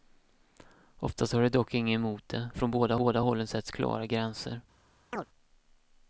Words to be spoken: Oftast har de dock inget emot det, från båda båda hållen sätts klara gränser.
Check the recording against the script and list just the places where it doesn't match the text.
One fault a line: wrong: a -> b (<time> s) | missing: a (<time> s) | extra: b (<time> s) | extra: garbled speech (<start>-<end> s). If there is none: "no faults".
no faults